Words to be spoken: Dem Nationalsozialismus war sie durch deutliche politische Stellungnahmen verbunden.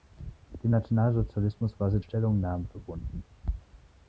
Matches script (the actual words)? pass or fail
fail